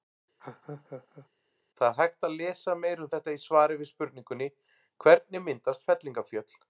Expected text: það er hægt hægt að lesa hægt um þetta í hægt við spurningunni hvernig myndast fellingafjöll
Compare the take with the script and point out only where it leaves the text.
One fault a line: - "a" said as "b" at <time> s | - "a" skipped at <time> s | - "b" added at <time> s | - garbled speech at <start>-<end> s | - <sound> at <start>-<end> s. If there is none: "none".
- laugh at 0.4-1.3 s
- "hægt" skipped at 2.3 s
- "hægt" said as "meira" at 2.8 s
- "hægt" said as "svari" at 3.5 s